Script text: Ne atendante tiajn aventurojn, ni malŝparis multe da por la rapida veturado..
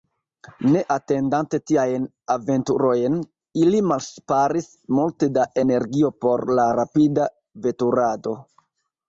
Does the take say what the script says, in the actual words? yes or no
no